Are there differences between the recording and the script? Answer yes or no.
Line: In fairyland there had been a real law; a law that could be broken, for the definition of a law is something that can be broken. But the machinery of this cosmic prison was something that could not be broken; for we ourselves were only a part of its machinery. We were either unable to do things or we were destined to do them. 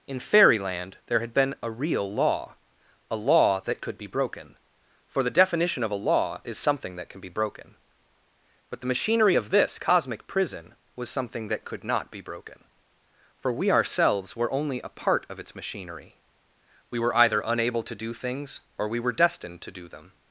no